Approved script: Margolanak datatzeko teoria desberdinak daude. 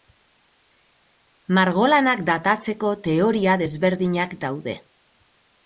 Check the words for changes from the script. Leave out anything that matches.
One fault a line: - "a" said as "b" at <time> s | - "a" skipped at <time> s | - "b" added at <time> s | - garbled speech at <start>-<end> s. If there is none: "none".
none